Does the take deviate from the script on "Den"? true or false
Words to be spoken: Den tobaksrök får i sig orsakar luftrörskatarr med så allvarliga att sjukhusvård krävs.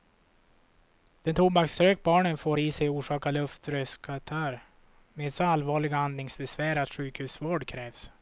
false